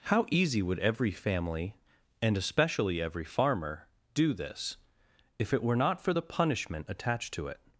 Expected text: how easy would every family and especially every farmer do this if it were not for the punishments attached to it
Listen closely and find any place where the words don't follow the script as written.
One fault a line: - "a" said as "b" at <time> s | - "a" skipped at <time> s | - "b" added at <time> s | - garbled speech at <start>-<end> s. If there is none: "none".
- "punishments" said as "punishment" at 6.2 s